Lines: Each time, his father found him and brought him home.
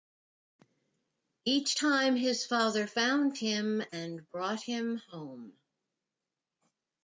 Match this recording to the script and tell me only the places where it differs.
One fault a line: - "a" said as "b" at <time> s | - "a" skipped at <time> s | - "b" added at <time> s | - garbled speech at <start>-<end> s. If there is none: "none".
none